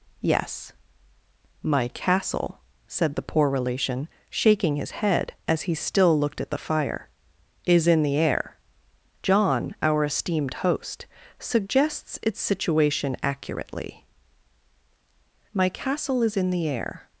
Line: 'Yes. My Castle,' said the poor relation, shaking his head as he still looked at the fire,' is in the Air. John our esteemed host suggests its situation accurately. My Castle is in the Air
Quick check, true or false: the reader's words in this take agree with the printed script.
true